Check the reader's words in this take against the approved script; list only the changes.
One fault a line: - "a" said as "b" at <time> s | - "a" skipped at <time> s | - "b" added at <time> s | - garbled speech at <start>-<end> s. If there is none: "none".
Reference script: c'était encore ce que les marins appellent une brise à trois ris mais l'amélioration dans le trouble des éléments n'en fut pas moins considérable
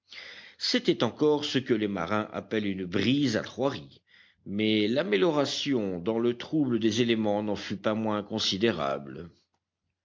none